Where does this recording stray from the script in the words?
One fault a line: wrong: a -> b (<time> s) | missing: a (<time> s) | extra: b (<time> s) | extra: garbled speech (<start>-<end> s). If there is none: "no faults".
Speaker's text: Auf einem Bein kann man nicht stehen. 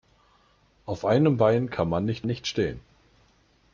extra: nicht (2.3 s)